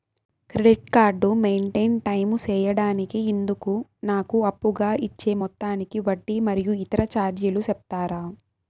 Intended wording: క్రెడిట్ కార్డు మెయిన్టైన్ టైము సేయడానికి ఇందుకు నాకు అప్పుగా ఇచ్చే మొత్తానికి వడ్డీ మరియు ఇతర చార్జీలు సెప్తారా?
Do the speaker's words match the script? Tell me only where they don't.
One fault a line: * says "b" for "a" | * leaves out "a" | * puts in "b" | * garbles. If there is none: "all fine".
all fine